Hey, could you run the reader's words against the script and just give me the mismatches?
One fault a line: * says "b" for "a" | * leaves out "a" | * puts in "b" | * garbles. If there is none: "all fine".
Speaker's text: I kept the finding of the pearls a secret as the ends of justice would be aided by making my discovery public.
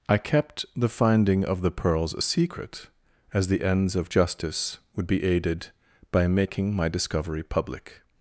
all fine